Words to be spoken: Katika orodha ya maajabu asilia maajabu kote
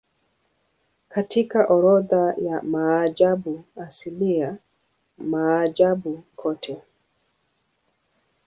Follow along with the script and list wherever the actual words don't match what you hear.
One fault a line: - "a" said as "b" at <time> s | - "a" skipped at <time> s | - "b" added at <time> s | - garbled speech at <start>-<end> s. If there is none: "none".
none